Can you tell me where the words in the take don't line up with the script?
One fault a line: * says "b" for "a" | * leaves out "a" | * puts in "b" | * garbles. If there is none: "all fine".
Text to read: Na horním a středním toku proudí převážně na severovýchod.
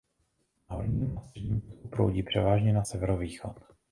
all fine